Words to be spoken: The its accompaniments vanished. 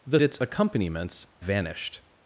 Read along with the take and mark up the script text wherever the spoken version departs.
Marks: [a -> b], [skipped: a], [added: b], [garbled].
The its accompaniments vanished.